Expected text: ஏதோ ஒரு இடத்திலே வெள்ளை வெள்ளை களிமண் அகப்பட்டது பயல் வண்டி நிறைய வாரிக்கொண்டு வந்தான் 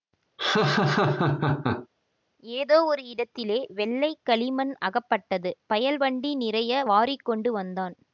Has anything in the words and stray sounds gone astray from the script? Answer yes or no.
yes